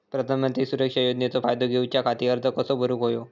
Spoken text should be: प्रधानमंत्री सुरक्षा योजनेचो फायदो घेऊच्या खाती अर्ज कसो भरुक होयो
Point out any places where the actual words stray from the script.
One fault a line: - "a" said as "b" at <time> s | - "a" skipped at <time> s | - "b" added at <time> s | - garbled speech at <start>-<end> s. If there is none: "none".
none